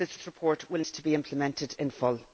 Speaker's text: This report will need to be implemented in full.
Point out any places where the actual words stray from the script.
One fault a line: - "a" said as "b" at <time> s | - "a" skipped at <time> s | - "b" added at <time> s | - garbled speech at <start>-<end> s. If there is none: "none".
- "this" added at 0.1 s
- "need" skipped at 0.8 s